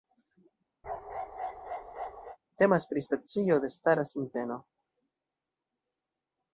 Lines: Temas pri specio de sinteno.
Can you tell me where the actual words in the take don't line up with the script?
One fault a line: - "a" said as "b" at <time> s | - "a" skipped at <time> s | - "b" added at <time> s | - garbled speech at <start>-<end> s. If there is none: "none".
- "stara" added at 3.8 s